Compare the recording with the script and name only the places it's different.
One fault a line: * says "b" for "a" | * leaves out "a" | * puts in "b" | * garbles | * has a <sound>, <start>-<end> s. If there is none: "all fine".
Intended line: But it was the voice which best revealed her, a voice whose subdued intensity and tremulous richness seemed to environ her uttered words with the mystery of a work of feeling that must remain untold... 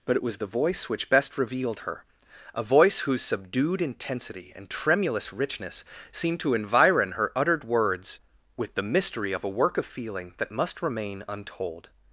all fine